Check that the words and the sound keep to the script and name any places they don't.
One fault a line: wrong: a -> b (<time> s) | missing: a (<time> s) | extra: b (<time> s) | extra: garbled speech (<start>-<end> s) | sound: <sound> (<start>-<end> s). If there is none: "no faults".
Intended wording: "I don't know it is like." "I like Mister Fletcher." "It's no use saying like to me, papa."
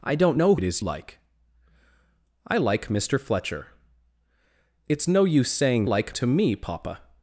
no faults